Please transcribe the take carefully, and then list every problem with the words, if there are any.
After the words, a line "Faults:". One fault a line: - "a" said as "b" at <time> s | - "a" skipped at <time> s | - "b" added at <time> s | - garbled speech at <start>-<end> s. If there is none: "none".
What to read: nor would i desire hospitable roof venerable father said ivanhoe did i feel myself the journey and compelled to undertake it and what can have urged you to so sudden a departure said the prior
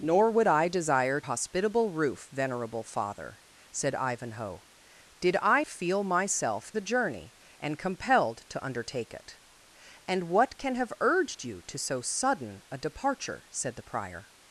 nor would i desire hospitable roof venerable father said ivanhoe did i feel myself the journey and compelled to undertake it and what can have urged you to so sudden a departure said the prior
Faults:
none